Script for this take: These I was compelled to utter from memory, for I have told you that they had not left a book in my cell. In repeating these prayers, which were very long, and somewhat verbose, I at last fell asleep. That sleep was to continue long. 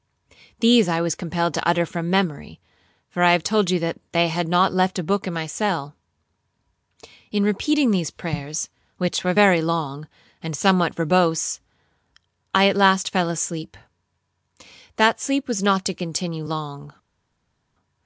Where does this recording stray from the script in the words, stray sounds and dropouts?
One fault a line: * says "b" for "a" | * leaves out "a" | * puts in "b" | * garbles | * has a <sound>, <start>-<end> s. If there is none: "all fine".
* puts in "not"